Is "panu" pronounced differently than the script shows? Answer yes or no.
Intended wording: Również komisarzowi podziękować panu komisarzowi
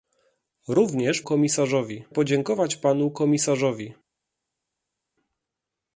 no